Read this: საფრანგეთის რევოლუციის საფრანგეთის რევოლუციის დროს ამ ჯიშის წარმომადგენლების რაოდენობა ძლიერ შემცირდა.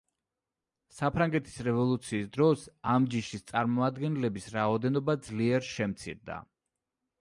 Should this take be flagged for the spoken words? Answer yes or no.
yes